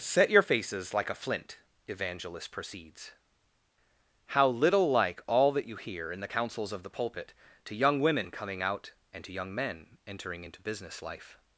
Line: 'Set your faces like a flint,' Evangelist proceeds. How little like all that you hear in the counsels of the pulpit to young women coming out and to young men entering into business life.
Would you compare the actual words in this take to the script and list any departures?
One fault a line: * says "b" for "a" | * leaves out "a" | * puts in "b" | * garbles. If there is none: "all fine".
all fine